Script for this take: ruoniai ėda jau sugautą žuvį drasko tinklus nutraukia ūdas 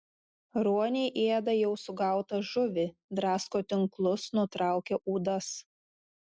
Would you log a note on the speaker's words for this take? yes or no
no